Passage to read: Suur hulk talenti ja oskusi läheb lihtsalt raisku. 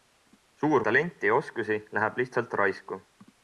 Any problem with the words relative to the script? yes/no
yes